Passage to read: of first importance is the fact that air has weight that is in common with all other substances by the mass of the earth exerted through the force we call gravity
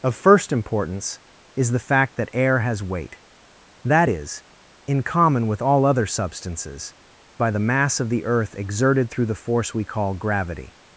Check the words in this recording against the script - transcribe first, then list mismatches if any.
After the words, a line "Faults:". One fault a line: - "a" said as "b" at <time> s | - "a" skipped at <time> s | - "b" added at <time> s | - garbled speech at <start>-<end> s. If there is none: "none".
of first importance is the fact that air has weight that is in common with all other substances by the mass of the earth exerted through the force we call gravity
Faults:
none